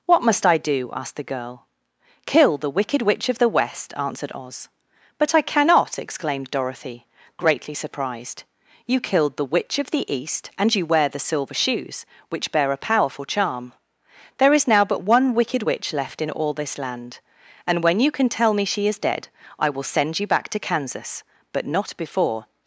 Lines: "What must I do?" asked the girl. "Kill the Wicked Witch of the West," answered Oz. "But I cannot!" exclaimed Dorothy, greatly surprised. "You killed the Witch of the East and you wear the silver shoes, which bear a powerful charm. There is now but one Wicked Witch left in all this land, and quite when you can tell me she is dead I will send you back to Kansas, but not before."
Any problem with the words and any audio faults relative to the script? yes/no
yes